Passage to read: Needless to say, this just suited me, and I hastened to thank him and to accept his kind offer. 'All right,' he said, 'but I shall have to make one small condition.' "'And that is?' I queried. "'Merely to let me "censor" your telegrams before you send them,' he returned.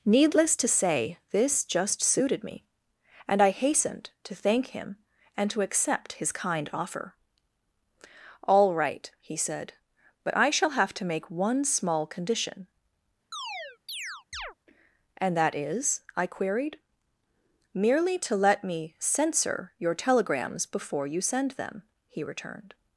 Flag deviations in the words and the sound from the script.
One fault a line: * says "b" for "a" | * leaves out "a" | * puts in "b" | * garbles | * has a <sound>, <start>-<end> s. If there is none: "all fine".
* has a chirp, 13.3-14.5 s